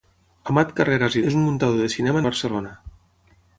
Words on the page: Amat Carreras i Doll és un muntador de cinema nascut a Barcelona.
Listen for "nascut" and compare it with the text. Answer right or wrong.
wrong